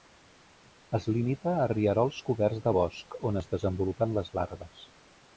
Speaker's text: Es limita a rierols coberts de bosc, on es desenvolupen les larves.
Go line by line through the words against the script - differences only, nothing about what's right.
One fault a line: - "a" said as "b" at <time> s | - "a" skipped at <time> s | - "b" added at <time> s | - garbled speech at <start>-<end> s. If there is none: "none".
none